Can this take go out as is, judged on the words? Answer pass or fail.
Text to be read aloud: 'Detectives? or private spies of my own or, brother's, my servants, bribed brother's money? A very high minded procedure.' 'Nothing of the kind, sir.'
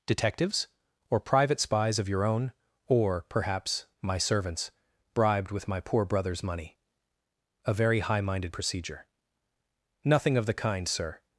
fail